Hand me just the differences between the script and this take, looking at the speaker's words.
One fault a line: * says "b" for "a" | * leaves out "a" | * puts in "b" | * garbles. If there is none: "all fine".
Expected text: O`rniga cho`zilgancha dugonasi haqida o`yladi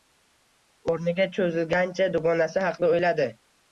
all fine